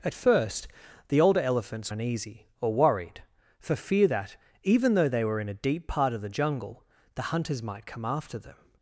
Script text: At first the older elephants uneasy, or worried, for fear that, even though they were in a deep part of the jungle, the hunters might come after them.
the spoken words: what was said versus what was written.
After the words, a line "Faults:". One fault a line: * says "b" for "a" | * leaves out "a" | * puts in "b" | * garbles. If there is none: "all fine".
At first the older elephants uneasy, or worried, for fear that, even though they were in a deep part of the jungle, the hunters might come after them.
Faults:
all fine